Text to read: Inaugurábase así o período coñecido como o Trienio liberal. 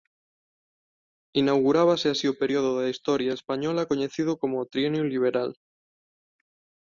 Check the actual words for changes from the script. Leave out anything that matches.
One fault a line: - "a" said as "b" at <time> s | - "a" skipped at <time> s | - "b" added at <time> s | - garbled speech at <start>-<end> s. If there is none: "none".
- "da historia española" added at 2.8 s